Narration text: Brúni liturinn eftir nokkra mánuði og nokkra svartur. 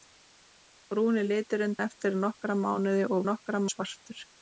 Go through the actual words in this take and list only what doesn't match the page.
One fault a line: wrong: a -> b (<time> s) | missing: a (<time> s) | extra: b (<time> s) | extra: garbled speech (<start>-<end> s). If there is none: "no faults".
no faults